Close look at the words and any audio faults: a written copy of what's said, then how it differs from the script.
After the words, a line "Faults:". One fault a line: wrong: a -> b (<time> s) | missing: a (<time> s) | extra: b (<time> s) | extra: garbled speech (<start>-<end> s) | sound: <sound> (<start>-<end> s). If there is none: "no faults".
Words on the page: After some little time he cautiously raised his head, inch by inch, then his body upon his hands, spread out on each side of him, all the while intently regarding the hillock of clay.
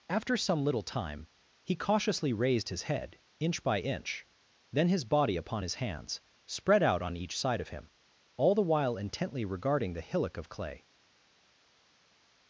After some little time he cautiously raised his head, inch by inch, then his body upon his hands, spread out on each side of him, all the while intently regarding the hillock of clay.
Faults:
no faults